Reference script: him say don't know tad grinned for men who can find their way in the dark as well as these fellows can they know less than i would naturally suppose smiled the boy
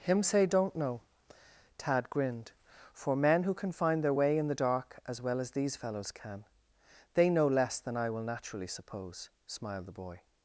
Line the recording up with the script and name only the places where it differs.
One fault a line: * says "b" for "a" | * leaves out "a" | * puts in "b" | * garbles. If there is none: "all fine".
* says "will" for "would"